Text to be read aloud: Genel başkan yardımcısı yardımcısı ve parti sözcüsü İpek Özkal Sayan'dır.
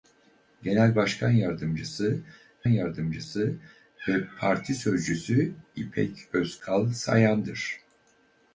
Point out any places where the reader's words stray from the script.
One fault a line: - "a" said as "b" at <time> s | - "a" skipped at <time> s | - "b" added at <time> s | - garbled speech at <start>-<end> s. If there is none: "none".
none